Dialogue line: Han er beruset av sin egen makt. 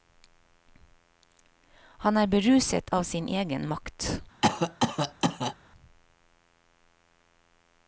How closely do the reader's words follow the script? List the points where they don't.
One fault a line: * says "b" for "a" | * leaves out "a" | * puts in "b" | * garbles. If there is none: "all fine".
all fine